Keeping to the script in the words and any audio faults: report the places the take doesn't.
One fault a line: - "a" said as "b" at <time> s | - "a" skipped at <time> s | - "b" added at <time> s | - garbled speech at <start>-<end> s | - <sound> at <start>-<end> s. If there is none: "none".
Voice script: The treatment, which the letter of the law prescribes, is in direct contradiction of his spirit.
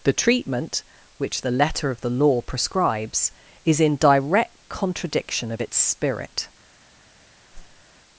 - "his" said as "its" at 5.6 s
- whoosh at 7.5-7.9 s